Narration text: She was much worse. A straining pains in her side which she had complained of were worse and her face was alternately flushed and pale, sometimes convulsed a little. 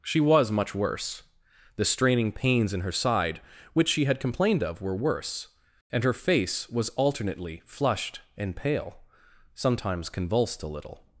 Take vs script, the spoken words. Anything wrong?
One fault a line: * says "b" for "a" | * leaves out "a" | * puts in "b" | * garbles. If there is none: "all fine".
* says "The" for "A"